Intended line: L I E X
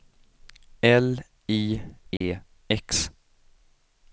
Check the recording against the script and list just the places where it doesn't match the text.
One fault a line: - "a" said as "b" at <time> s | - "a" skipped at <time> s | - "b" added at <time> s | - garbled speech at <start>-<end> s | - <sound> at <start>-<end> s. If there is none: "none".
- dropout at 2.2-2.2 s